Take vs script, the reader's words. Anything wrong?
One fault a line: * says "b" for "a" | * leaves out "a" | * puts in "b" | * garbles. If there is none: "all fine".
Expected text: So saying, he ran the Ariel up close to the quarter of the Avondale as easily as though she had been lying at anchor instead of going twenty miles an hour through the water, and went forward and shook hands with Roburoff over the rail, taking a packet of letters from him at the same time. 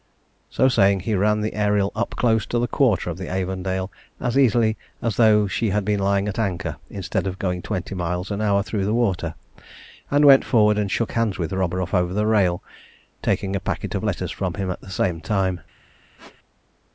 all fine